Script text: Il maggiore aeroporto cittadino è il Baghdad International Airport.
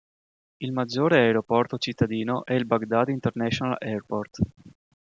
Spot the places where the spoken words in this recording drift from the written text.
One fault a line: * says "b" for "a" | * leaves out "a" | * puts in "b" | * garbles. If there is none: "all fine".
all fine